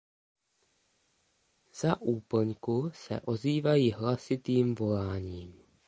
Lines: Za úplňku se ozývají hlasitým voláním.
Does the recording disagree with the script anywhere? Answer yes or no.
no